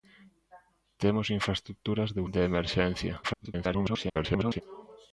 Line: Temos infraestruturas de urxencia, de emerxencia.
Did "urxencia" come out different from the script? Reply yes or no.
yes